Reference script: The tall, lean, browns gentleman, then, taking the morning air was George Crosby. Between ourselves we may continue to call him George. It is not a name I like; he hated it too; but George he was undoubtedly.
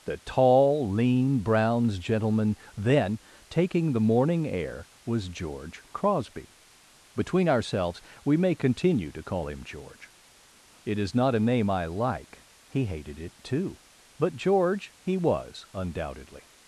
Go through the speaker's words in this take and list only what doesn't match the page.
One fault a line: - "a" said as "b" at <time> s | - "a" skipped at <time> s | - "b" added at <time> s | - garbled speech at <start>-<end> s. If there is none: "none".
none